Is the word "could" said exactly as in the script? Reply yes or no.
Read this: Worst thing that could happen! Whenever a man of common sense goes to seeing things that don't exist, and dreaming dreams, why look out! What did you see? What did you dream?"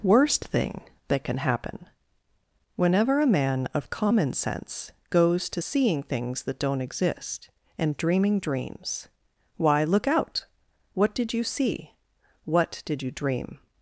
no